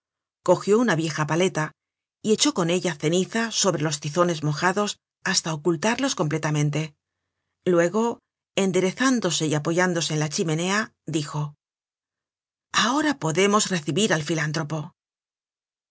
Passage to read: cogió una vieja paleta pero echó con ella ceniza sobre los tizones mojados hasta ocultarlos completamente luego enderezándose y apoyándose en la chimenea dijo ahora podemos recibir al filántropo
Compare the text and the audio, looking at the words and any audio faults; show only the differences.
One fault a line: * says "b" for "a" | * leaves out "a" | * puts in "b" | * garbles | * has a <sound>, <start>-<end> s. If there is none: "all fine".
* says "y" for "pero"